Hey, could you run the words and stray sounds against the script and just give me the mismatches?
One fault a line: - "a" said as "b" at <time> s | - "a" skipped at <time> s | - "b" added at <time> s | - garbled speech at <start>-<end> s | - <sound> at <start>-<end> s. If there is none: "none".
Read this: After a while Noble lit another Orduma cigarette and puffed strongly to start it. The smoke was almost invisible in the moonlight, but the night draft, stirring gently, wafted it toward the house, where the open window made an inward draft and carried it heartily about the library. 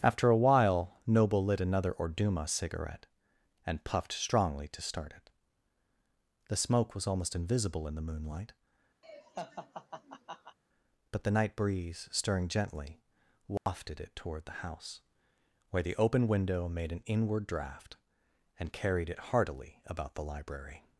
- laugh at 9.0-10.6 s
- "draft" said as "breeze" at 11.6 s
- dropout at 13.6-13.7 s